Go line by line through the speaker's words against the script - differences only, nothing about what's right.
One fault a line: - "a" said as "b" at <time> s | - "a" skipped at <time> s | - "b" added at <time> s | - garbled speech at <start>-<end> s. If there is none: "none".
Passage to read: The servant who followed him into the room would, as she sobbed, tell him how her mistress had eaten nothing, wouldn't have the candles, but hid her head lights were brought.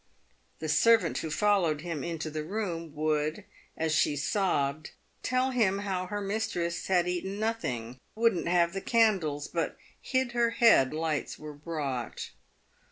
none